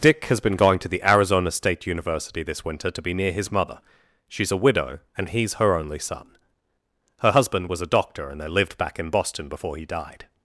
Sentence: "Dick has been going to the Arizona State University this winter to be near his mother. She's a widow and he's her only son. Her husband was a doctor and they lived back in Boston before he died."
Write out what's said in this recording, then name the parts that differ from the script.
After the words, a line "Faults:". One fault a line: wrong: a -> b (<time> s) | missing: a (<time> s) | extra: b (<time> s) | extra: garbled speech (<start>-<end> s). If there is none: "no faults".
"Dick has been going to the Arizona State University this winter to be near his mother. She's a widow and he's her only son. Her husband was a doctor and they lived back in Boston before he died."
Faults:
no faults